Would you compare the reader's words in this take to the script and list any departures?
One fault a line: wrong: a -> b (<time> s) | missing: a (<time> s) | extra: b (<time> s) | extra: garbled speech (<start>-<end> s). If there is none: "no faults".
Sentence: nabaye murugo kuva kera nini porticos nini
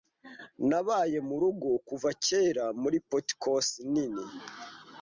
wrong: nini -> muri (2.8 s)